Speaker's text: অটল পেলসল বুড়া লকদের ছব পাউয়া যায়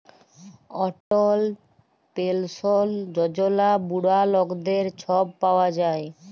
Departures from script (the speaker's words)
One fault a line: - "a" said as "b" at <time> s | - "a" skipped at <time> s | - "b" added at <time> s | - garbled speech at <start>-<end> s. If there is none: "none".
- "যজলা" added at 3.1 s